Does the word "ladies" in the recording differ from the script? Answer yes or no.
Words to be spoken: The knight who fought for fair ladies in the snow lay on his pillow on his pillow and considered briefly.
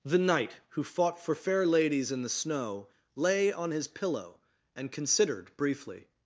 no